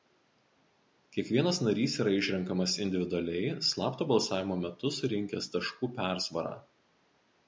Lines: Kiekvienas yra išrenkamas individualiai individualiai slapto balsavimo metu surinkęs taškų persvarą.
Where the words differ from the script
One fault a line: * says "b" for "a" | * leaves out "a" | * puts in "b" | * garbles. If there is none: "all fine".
* puts in "narys"
* leaves out "individualiai"